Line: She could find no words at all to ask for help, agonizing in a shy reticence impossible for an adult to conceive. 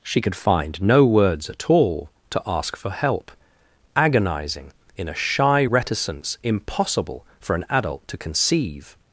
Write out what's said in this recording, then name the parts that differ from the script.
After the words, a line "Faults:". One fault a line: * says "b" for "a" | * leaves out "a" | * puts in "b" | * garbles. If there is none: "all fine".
She could find no words at all to ask for help, agonizing in a shy reticence impossible for an adult to conceive.
Faults:
all fine